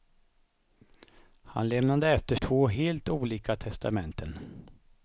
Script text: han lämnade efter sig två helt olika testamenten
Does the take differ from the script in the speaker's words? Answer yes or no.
yes